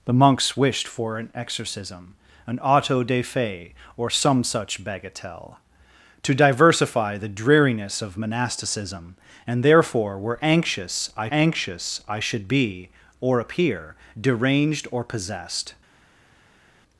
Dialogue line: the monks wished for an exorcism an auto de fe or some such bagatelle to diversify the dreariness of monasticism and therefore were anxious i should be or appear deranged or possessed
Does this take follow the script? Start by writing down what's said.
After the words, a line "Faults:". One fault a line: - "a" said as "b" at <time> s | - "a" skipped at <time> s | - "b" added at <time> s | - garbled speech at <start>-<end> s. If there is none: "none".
the monks wished for an exorcism an auto de fe or some such bagatelle to diversify the dreariness of monasticism and therefore were anxious i anxious i should be or appear deranged or possessed
Faults:
- "anxious i" added at 11.3 s